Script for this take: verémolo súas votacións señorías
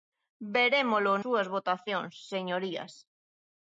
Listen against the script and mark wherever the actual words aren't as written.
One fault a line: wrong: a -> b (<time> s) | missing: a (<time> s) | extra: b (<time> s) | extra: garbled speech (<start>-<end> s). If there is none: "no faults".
no faults